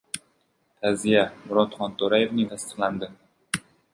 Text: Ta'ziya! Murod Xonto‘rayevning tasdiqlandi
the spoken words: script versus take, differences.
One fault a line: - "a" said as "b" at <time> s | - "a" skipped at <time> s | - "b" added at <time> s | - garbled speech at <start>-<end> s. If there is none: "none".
none